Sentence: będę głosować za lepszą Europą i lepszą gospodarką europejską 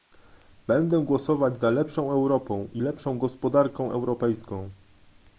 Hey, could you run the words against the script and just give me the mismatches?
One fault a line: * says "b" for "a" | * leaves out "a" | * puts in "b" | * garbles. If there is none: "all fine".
all fine